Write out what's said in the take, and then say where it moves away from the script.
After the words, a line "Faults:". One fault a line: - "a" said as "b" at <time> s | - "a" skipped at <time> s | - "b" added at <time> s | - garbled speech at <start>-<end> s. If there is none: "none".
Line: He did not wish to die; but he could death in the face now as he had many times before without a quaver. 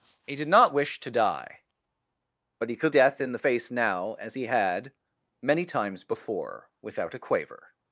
He did not wish to die; but he could death in the face now as he had many times before without a quaver.
Faults:
none